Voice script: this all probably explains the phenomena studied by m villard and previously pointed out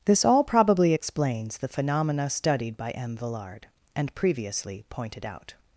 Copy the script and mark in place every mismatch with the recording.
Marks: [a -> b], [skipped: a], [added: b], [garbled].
this all probably explains the phenomena studied by m villard and previously pointed out